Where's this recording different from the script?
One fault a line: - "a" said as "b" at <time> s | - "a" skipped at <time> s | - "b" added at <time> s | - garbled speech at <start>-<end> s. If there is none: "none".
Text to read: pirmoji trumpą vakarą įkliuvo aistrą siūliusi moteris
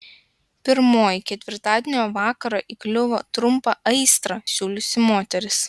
- "trumpą" said as "ketvirtadienio" at 1.3 s
- "trumpą" added at 3.4 s